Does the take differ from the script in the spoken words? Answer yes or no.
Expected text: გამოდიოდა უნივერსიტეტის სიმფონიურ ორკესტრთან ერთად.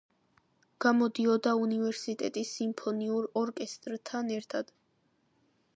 no